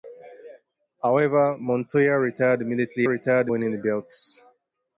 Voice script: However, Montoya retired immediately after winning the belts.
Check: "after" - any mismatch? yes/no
yes